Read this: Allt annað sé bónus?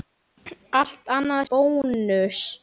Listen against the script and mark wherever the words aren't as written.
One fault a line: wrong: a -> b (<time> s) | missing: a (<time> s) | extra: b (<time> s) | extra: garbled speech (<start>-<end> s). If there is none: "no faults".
missing: sé (1.4 s)